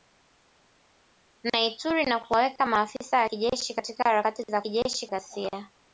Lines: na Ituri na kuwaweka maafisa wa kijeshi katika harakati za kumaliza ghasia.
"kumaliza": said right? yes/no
no